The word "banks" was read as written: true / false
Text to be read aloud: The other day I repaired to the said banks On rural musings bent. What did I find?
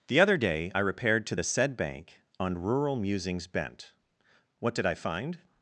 false